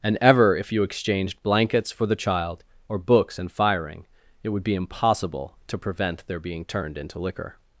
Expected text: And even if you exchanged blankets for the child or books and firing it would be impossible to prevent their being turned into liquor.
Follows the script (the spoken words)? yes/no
no